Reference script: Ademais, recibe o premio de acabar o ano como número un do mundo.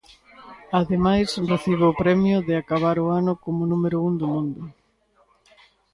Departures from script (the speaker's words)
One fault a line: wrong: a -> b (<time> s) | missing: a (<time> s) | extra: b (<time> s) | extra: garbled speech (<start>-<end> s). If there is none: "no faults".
no faults